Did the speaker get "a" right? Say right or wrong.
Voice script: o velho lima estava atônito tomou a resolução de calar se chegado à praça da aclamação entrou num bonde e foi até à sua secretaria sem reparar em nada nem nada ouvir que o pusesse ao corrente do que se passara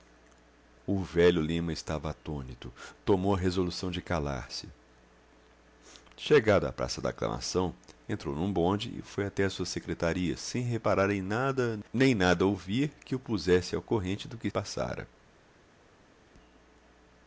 right